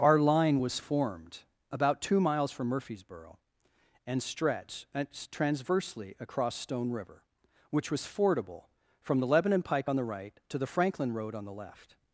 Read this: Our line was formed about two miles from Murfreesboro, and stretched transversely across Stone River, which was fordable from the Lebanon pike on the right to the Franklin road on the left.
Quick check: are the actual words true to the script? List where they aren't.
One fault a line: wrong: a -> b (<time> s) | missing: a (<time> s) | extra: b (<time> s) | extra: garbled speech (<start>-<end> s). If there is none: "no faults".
no faults